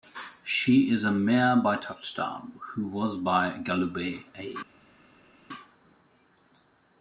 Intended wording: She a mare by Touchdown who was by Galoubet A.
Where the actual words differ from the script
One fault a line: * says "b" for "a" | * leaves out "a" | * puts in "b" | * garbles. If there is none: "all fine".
* puts in "is"